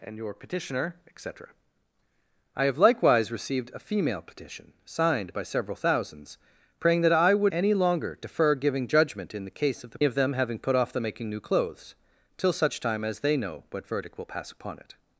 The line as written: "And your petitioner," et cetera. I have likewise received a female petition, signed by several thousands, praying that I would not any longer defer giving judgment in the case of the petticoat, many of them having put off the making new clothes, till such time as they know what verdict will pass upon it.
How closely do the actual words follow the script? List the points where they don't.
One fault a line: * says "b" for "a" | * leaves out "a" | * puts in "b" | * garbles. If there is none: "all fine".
* leaves out "not"
* leaves out "petticoat many"